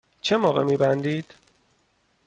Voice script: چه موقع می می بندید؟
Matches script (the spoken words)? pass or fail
fail